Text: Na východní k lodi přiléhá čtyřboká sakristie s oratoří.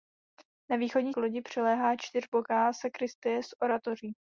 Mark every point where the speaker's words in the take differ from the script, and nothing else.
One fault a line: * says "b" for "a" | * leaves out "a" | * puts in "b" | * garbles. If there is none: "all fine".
all fine